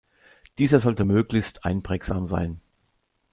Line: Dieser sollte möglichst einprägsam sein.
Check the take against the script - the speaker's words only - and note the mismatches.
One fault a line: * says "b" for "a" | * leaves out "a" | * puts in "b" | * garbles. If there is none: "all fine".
all fine